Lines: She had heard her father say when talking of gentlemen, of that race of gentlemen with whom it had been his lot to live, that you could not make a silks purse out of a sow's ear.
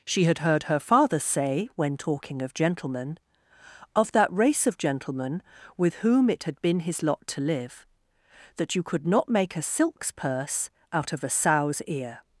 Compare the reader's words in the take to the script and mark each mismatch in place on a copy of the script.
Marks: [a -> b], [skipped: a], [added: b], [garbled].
She had heard her father say when talking of gentlemen, of that race of gentlemen with whom it had been his lot to live, that you could not make a silks purse out of a sow's ear.